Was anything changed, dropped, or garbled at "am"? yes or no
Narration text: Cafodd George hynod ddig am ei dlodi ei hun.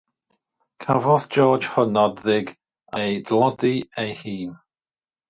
yes